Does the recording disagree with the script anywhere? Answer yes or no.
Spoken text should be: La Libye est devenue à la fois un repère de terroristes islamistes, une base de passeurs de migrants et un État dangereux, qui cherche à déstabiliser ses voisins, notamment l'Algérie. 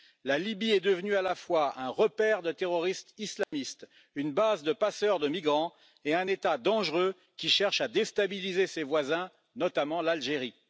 no